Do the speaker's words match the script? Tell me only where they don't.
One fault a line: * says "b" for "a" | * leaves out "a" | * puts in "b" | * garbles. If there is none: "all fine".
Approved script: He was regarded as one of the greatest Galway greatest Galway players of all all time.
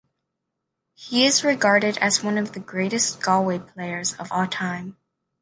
* says "is" for "was"
* leaves out "greatest Galway"
* leaves out "all"